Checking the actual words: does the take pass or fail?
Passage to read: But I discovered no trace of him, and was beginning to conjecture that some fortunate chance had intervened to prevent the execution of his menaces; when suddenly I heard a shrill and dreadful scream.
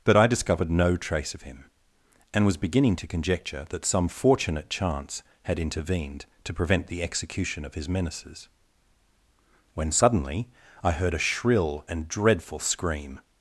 pass